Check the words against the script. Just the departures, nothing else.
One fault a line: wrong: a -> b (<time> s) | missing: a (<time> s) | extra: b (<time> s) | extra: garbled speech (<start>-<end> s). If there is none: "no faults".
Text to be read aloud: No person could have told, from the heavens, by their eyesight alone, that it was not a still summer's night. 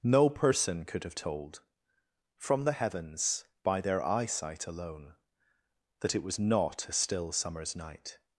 no faults